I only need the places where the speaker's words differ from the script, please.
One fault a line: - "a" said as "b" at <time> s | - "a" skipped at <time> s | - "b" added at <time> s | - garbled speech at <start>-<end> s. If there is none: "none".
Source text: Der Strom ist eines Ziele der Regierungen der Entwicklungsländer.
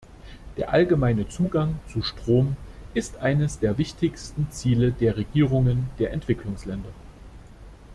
- "allgemeine Zugang zu" added at 0.7 s
- "der wichtigsten" added at 3.6 s